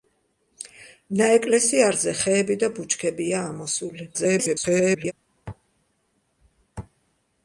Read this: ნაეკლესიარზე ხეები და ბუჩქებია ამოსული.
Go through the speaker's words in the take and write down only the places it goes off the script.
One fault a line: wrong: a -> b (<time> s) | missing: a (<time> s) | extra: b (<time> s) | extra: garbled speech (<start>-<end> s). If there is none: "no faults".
extra: garbled speech (4.1-5.1 s)